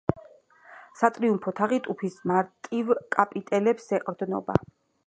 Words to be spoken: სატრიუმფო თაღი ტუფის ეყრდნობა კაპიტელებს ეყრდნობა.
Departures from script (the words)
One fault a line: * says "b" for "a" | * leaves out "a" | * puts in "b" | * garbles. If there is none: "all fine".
* says "მარტივ" for "ეყრდნობა"